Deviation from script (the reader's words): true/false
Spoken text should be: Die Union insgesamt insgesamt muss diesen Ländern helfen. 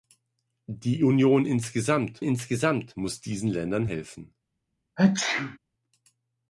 false